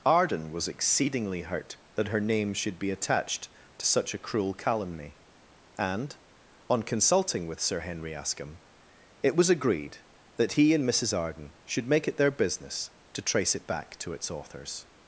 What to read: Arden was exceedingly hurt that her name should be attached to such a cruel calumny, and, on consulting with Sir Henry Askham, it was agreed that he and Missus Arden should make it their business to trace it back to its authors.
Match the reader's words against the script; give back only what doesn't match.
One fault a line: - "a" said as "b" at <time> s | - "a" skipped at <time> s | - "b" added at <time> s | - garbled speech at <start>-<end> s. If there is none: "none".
none